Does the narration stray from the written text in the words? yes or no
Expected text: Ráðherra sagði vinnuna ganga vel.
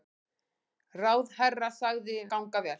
yes